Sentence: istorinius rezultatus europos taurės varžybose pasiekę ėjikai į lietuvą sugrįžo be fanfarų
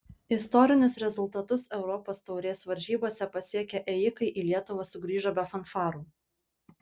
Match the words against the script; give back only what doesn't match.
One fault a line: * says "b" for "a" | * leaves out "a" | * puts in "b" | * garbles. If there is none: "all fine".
all fine